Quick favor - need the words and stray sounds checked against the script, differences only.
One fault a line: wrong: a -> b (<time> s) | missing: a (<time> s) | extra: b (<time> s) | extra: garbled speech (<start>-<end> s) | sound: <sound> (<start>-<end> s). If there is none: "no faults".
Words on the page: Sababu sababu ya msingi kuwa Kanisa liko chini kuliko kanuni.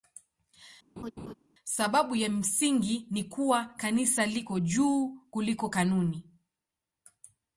sound: laugh (1.0-1.3 s)
missing: sababu (2.2 s)
extra: ni (3.1 s)
wrong: chini -> juu (4.6 s)